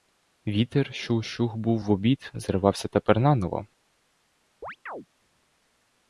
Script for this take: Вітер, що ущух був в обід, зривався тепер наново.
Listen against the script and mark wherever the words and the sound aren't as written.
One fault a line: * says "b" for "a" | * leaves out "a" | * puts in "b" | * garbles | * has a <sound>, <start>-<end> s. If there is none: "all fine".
* has a chirp, 4.6-5.1 s